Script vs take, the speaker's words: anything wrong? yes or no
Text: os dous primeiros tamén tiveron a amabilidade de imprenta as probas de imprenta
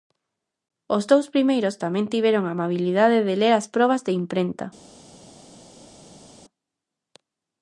yes